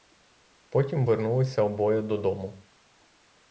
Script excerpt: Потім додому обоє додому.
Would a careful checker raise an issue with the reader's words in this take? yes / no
yes